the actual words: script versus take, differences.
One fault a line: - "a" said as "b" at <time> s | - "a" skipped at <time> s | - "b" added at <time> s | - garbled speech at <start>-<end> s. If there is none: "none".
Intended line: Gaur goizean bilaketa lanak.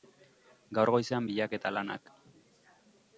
none